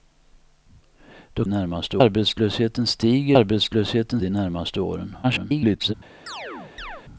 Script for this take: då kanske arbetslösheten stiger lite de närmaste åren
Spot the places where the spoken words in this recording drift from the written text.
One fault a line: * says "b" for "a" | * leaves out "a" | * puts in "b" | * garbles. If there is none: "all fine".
* says "närmaste" for "kanske"
* says "arbetslösheten" for "lite"
* garbles